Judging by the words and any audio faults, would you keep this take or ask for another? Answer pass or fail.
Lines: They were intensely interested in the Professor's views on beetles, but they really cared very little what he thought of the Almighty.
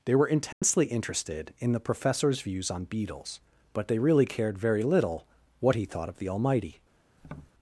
fail